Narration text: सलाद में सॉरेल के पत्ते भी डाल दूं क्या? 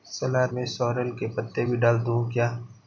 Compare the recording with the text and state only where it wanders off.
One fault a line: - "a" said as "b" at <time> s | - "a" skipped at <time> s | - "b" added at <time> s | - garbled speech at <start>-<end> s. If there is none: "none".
none